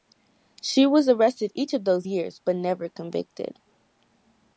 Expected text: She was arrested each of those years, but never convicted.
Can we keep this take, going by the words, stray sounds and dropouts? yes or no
yes